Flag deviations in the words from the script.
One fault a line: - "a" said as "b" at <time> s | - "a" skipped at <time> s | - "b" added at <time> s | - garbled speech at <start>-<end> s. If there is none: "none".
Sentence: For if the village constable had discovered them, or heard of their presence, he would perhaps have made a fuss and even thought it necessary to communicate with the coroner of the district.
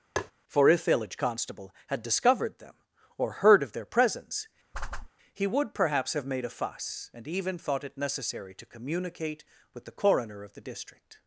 - "the" skipped at 0.8 s